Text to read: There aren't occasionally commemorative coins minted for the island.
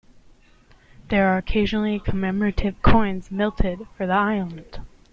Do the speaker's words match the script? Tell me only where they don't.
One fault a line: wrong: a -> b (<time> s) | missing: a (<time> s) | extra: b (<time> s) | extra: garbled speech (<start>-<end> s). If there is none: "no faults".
wrong: aren't -> are (1.3 s)